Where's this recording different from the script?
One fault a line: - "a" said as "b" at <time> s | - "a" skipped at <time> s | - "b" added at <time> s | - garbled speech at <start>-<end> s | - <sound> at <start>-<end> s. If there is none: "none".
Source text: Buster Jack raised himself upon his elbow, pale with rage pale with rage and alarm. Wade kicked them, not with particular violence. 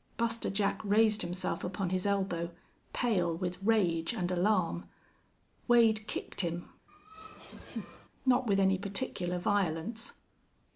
- "pale with rage" skipped at 4.1 s
- "them" said as "him" at 6.4 s
- laugh at 6.9-8.1 s
- "any" added at 8.6 s